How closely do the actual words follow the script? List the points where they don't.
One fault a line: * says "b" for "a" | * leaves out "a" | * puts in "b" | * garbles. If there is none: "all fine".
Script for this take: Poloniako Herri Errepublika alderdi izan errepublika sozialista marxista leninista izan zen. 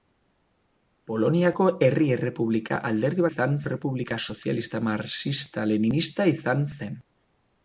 all fine